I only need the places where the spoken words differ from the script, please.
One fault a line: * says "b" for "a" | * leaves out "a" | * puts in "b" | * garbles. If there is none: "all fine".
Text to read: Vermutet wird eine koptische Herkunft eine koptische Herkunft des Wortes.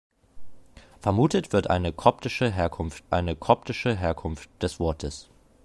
all fine